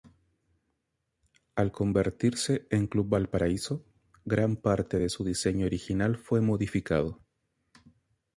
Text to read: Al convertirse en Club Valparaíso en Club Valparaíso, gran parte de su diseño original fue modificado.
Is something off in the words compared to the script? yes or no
yes